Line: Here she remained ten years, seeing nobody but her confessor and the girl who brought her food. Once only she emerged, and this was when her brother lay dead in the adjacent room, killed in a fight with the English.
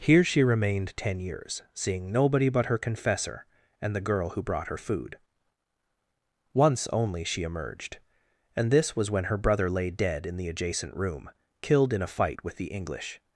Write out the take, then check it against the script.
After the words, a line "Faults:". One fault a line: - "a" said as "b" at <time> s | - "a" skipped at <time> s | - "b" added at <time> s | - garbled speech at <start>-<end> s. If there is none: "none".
Here she remained ten years, seeing nobody but her confessor and the girl who brought her food. Once only she emerged, and this was when her brother lay dead in the adjacent room, killed in a fight with the English.
Faults:
none